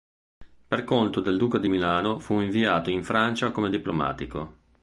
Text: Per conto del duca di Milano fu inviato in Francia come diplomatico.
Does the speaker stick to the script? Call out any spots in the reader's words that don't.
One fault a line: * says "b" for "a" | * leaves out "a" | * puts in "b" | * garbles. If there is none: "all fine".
all fine